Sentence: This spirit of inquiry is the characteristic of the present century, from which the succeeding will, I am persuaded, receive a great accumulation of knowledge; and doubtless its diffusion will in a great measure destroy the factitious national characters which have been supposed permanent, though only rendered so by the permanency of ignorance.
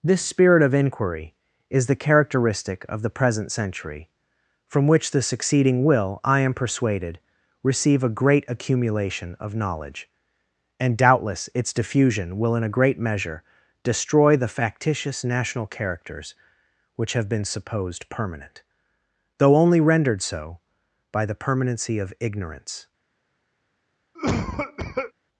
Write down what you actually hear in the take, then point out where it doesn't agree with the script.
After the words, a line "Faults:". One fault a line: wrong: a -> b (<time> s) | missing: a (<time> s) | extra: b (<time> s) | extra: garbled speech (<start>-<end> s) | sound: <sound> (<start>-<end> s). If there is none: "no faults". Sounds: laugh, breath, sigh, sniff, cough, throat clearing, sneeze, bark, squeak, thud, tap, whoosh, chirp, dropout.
This spirit of inquiry is the characteristic of the present century, from which the succeeding will, I am persuaded, receive a great accumulation of knowledge; and doubtless its diffusion will in a great measure destroy the factitious national characters which have been supposed permanent, though only rendered so by the permanency of ignorance.
Faults:
sound: cough (24.2-25.1 s)